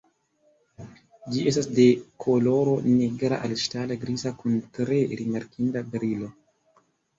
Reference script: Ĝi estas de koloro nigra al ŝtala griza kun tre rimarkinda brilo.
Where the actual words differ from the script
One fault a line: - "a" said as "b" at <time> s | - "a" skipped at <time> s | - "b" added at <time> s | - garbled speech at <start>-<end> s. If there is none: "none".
none